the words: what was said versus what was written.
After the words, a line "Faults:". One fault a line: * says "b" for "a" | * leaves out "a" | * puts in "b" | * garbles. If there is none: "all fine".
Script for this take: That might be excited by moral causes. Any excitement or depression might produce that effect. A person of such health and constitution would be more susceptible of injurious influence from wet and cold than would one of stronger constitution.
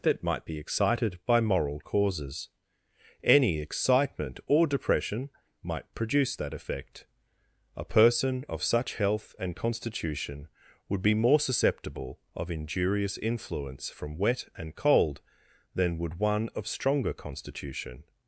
That might be excited by moral causes. Any excitement or depression might produce that effect. A person of such health and constitution would be more susceptible of injurious influence from wet and cold than would one of stronger constitution.
Faults:
all fine